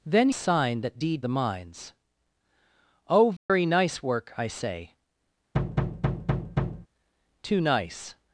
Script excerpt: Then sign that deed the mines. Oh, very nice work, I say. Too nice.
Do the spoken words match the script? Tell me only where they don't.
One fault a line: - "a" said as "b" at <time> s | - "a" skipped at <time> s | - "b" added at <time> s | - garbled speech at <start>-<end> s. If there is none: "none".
none